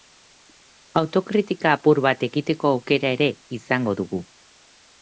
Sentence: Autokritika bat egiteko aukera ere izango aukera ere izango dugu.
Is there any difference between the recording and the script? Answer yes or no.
yes